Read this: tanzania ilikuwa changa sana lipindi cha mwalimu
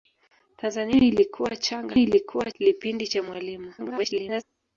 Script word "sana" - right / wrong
wrong